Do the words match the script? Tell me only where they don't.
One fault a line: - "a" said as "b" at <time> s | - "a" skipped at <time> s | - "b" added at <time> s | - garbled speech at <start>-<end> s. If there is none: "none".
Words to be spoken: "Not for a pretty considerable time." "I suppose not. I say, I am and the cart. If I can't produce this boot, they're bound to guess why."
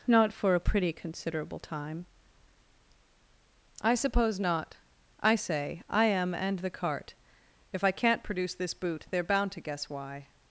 none